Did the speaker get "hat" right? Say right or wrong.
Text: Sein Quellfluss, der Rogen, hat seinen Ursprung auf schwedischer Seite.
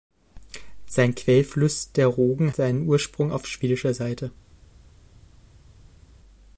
wrong